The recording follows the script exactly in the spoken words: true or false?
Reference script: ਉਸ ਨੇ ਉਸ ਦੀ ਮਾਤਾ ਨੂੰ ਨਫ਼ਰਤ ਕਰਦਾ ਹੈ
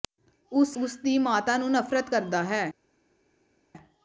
false